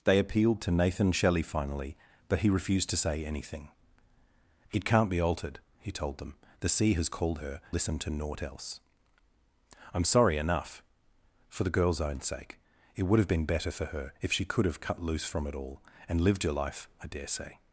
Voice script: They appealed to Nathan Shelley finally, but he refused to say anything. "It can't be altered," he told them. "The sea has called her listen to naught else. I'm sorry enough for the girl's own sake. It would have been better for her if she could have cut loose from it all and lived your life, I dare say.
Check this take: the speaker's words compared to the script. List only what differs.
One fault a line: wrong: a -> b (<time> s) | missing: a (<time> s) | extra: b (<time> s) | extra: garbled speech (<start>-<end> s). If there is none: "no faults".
no faults